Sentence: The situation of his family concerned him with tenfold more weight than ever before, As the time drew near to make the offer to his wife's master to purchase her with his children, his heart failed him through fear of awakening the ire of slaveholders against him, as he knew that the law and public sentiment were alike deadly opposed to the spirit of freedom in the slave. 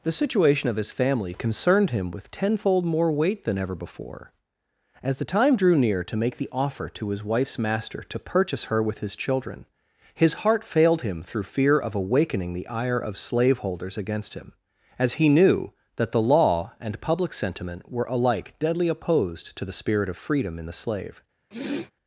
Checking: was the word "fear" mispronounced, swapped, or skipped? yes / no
no